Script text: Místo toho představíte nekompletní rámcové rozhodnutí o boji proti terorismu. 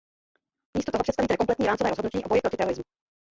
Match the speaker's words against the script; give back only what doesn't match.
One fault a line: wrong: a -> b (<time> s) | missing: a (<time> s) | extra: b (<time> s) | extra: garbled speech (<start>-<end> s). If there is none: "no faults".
no faults